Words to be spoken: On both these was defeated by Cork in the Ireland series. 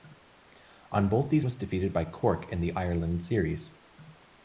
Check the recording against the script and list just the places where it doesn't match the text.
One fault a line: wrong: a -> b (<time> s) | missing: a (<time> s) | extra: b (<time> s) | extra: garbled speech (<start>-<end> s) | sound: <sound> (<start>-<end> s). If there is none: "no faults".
no faults